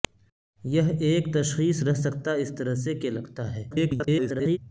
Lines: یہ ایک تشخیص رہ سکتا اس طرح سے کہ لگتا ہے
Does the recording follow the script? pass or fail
fail